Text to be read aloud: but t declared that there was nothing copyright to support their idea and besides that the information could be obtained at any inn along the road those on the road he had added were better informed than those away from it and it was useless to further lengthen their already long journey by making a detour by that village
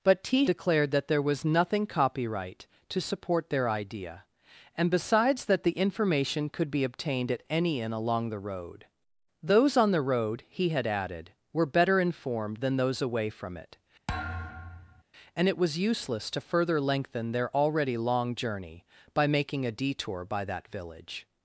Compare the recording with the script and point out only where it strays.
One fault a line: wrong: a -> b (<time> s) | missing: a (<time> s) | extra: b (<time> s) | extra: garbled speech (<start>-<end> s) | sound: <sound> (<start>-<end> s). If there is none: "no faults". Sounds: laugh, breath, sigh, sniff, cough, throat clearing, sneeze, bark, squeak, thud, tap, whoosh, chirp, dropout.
sound: thud (14.1-15.0 s)